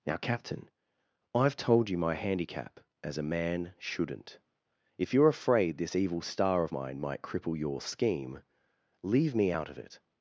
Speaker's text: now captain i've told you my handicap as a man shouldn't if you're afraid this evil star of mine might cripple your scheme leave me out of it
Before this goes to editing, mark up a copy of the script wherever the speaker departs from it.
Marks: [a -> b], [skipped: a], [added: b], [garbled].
now captain i've told you my handicap as a man shouldn't if you're afraid this evil star of mine might cripple your scheme leave me out of it